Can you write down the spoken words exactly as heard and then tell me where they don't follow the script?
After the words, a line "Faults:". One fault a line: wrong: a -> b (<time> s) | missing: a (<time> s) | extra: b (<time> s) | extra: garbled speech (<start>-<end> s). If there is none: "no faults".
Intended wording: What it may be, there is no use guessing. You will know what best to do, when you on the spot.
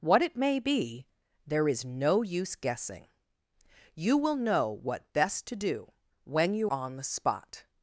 What it may be, there is no use guessing. You will know what best to do, when you on the spot.
Faults:
no faults